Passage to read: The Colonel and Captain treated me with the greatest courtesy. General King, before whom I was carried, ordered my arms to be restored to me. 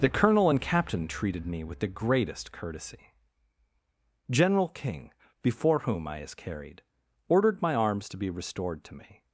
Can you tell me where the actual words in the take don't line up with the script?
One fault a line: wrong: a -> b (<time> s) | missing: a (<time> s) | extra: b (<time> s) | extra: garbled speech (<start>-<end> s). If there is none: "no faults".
wrong: was -> is (6.2 s)